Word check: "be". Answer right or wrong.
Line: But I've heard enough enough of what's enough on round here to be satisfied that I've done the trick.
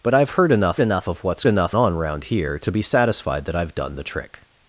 right